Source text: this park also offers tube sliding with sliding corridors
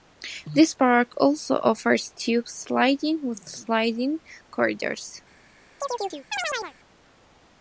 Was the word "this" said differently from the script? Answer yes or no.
no